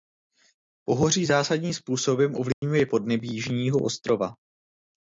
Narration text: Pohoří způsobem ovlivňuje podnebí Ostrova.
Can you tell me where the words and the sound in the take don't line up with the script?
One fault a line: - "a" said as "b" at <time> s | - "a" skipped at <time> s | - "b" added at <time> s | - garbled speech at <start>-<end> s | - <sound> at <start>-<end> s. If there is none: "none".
- "zásadním" added at 1.2 s
- dropout at 2.5-2.6 s
- "Jižního" added at 3.3 s